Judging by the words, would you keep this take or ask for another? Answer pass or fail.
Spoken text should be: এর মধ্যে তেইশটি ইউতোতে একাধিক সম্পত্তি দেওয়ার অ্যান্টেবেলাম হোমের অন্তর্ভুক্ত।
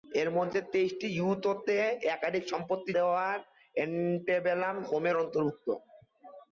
pass